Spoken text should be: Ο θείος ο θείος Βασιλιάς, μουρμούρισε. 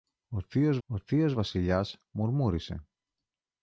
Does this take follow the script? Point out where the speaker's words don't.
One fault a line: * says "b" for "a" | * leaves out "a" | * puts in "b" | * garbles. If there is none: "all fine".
all fine